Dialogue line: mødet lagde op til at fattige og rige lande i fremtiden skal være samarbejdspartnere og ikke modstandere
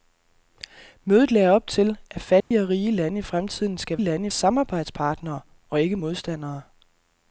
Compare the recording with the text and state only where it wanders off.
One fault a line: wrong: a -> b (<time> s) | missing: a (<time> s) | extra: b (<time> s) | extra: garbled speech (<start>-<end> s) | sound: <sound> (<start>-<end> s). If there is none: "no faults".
sound: dropout (2.4-2.5 s)
wrong: være -> lande (4.0 s)